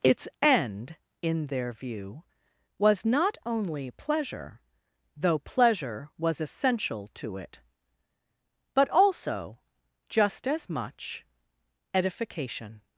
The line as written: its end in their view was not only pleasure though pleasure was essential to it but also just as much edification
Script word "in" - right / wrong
right